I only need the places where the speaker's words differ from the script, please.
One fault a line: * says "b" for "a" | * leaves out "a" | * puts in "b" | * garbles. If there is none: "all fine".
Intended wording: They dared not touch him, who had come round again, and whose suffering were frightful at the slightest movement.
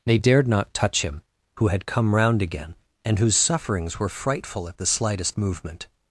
* says "sufferings" for "suffering"